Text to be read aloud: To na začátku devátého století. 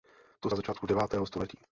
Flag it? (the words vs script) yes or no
no